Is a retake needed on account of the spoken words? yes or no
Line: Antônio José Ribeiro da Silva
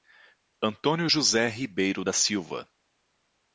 no